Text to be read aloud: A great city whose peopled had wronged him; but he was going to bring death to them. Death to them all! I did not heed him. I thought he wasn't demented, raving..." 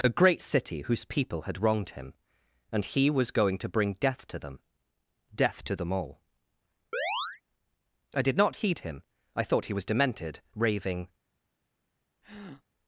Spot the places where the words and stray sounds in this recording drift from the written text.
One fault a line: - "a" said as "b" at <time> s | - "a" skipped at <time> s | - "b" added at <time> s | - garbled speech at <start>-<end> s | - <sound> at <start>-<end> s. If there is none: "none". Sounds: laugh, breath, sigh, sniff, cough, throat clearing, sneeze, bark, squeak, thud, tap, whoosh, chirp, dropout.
- "peopled" said as "people" at 1.0 s
- "but" said as "and" at 2.7 s
- chirp at 6.9-7.4 s
- "wasn't" said as "was" at 9.7 s
- breath at 12.2-12.6 s